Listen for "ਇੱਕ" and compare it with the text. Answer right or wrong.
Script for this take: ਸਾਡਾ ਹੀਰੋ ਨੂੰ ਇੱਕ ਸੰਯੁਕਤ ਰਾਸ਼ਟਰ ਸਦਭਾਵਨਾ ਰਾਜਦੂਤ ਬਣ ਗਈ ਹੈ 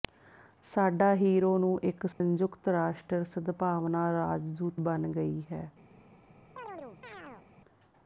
right